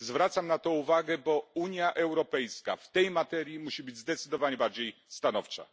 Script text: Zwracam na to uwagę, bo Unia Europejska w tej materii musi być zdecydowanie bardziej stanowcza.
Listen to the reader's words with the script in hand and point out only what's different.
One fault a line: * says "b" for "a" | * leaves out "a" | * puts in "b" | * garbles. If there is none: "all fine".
all fine